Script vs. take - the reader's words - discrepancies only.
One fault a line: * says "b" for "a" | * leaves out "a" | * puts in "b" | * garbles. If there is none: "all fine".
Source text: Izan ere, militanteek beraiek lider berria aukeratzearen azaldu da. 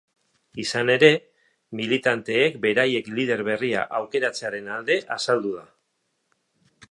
* puts in "alde"